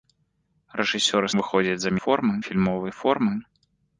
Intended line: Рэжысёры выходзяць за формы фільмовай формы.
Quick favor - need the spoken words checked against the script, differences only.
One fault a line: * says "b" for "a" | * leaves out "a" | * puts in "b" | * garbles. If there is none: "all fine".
all fine